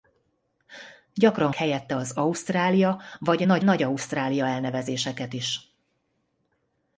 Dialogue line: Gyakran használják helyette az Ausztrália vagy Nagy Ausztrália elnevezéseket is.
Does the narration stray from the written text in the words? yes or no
yes